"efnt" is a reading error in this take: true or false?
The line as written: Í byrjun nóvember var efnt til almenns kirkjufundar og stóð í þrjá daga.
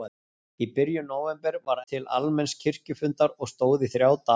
true